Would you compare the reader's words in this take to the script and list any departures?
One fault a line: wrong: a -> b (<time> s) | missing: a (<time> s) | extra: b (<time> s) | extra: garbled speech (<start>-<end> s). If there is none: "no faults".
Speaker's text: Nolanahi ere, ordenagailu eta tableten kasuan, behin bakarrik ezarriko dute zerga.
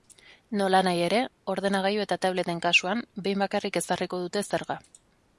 no faults